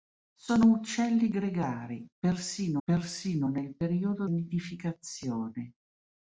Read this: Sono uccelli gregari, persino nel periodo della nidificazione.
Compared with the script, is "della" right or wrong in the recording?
wrong